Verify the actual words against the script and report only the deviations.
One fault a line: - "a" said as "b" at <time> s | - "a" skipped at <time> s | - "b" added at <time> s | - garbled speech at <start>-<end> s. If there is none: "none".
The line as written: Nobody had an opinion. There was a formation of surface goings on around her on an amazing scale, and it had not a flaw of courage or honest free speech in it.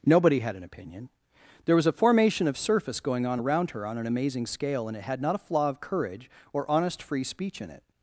- "goings" said as "going" at 3.0 s